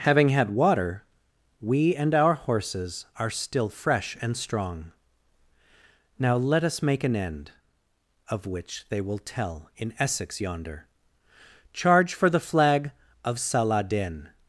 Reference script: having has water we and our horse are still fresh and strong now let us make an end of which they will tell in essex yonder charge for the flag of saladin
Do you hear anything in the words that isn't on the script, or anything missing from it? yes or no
yes